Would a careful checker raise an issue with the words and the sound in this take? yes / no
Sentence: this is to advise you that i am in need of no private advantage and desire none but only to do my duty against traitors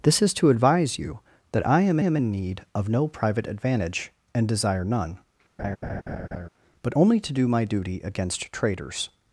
yes